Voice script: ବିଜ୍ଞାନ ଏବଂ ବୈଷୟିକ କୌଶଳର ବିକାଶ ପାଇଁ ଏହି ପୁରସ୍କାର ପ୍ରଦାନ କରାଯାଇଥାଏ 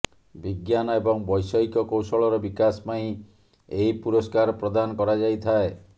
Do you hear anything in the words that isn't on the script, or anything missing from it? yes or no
no